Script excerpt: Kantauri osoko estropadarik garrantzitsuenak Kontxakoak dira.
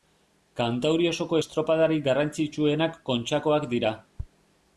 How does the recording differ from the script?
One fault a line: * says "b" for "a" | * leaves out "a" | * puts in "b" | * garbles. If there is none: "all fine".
all fine